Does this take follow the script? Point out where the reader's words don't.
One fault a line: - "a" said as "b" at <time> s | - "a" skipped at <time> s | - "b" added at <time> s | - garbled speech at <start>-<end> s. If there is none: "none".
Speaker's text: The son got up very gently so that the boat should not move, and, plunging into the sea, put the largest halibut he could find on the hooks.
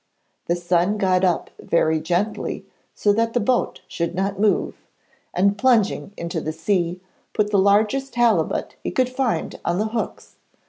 none